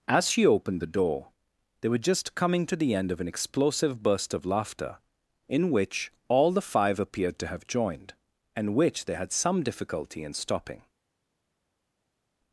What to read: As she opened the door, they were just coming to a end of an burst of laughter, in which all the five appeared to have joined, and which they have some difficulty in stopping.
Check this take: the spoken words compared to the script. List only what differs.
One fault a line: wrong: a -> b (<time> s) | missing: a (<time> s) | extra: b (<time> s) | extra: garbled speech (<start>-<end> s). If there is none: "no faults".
wrong: a -> the (2.8 s)
extra: explosive (3.3 s)
wrong: have -> had (9.1 s)